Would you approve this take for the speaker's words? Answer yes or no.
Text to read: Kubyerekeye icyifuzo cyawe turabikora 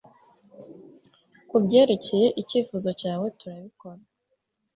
yes